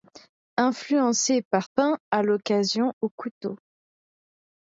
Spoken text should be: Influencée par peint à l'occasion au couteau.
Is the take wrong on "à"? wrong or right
right